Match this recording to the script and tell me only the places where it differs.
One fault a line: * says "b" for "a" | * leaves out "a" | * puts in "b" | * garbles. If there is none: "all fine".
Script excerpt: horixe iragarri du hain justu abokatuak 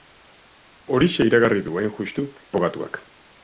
all fine